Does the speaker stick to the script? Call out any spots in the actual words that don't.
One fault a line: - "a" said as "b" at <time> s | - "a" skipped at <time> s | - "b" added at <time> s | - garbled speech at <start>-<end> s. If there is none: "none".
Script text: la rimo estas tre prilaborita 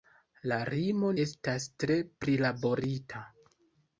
none